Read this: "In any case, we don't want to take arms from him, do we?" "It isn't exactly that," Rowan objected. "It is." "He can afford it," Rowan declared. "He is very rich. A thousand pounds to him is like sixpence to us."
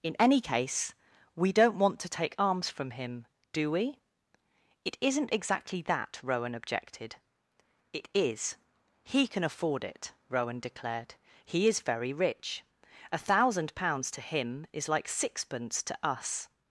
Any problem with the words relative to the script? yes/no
no